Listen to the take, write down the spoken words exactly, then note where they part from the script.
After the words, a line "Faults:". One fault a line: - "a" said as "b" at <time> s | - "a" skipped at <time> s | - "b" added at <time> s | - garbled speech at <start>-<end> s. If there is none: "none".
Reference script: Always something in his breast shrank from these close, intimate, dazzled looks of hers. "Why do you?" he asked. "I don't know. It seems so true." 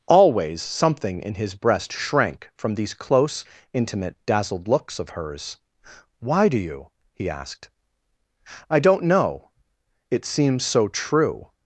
Always something in his breast shrank from these close, intimate, dazzled looks of hers. "Why do you?" he asked. "I don't know. It seems so true."
Faults:
none